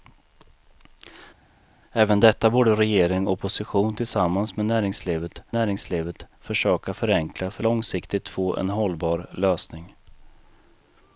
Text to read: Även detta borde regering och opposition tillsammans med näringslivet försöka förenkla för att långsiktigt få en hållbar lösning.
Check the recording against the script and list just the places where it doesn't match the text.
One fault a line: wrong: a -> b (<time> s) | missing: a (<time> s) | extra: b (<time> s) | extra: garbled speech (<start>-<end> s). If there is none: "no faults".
extra: näringslivet (5.5 s)
missing: att (7.6 s)